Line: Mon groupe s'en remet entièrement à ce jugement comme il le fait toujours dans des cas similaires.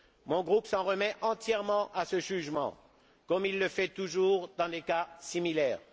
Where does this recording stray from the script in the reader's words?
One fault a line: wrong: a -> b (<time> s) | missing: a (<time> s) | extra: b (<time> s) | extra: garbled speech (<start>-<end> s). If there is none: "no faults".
no faults